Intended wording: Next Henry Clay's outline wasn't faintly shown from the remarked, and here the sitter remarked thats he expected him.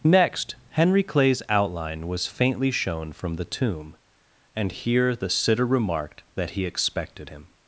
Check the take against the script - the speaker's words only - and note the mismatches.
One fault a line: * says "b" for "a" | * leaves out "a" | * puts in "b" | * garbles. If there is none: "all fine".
* says "was" for "wasn't"
* says "tomb" for "remarked"
* says "that" for "thats"